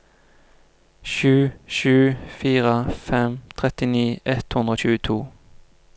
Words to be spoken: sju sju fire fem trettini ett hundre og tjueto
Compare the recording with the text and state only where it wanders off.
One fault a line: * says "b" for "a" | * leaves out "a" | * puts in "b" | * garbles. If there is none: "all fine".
all fine